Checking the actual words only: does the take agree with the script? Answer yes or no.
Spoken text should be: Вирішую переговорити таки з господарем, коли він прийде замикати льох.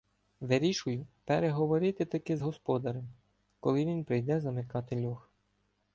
yes